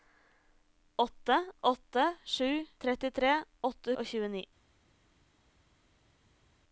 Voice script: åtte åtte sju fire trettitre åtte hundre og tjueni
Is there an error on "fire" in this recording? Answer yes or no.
yes